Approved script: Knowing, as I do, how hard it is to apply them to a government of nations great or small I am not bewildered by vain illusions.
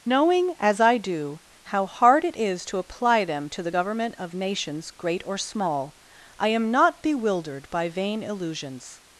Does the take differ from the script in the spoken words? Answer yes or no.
yes